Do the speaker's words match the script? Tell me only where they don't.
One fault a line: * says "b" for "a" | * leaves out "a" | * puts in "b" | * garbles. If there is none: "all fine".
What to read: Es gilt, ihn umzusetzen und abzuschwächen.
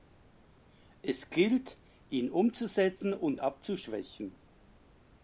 all fine